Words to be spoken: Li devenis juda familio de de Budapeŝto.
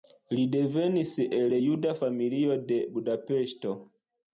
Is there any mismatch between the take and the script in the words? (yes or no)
yes